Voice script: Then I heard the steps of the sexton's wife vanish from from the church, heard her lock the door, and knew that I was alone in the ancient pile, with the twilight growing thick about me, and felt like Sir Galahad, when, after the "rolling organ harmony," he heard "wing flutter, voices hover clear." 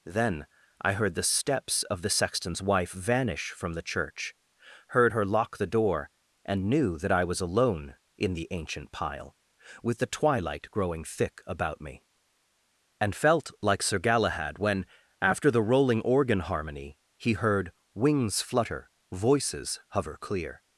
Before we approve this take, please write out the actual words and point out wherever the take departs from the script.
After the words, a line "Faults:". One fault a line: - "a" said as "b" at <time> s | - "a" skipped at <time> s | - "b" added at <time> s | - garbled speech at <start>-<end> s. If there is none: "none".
Then I heard the steps of the sexton's wife vanish from the church, heard her lock the door, and knew that I was alone in the ancient pile, with the twilight growing thick about me, and felt like Sir Galahad, when, after the "rolling organ harmony," he heard "wings flutter, voices hover clear."
Faults:
- "from" skipped at 3.7 s
- "wing" said as "wings" at 17.9 s